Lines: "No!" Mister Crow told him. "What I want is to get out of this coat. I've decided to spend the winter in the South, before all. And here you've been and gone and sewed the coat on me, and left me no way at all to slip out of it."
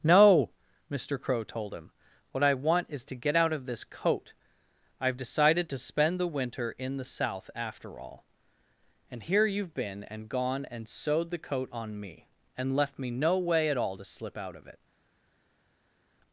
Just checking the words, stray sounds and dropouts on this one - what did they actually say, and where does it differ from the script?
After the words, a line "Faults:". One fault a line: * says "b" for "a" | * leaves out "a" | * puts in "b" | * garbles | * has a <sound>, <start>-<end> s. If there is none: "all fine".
"No!" Mister Crow told him. "What I want is to get out of this coat. I've decided to spend the winter in the South, after all. And here you've been and gone and sewed the coat on me, and left me no way at all to slip out of it."
Faults:
* says "after" for "before"